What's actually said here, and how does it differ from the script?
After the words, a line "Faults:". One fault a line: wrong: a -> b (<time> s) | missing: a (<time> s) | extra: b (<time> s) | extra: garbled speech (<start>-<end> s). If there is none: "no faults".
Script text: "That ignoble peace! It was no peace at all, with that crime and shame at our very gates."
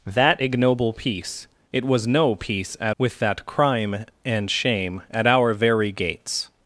"That ignoble peace! It was no peace at with that crime and shame at our very gates."
Faults:
missing: all (3.0 s)